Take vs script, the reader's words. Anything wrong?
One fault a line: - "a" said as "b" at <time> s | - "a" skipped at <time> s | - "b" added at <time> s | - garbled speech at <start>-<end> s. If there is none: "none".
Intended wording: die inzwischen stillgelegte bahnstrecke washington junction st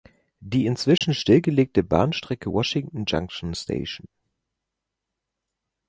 none